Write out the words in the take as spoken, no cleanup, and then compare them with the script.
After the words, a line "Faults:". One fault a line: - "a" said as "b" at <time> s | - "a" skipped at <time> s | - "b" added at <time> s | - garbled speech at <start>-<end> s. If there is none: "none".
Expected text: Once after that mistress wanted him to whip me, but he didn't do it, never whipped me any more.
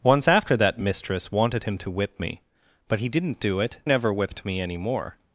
Once after that mistress wanted him to whip me, but he didn't do it, never whipped me any more.
Faults:
none